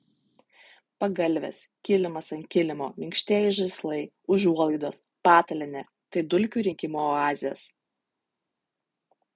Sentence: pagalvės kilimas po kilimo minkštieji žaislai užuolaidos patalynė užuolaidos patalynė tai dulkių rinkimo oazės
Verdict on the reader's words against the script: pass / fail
fail